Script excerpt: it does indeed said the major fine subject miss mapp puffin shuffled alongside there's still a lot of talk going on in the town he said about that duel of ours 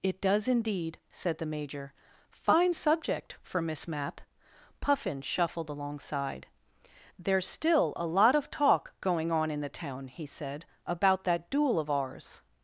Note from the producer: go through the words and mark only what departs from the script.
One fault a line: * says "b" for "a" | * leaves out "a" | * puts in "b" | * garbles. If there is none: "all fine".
* puts in "for"